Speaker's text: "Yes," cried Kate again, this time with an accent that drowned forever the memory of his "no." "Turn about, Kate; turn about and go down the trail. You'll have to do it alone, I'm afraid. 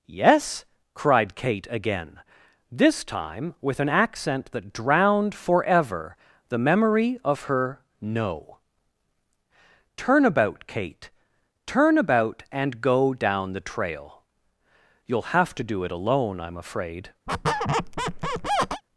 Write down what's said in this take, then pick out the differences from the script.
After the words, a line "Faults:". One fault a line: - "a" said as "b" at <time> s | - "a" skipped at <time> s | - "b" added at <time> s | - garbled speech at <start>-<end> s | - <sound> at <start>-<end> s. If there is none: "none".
"Yes," cried Kate again, this time with an accent that drowned forever the memory of her "no." "Turn about, Kate; turn about and go down the trail. You'll have to do it alone, I'm afraid.
Faults:
- "his" said as "her" at 7.4 s
- squeak at 17.3-18.8 s